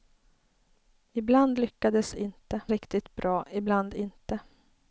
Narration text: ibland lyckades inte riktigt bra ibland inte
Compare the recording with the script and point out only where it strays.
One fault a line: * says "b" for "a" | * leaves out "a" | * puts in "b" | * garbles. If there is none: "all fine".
all fine